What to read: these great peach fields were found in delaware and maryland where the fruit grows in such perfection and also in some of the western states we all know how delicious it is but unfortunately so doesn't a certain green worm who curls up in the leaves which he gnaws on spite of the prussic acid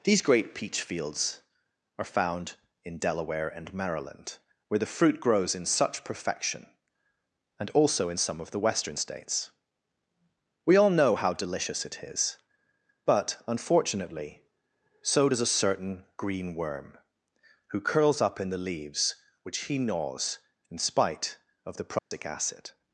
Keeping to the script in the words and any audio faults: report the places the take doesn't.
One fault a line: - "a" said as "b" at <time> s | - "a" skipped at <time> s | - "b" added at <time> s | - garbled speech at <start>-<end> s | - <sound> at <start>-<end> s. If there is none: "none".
- "were" said as "are" at 2.0 s
- "doesn't" said as "does" at 15.3 s
- "on" said as "in" at 20.7 s
- dropout at 22.0-22.1 s